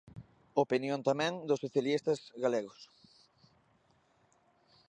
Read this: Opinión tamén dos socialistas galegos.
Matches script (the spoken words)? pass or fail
pass